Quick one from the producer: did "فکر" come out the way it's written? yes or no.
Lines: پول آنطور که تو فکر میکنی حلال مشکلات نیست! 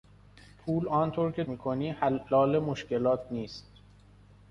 no